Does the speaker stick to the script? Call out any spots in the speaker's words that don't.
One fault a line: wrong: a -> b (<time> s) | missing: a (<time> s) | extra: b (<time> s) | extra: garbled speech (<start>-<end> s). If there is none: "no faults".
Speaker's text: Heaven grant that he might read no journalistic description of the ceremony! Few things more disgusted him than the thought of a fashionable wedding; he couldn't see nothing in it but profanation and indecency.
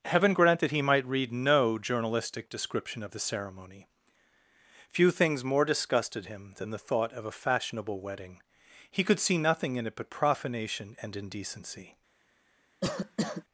wrong: couldn't -> could (9.0 s)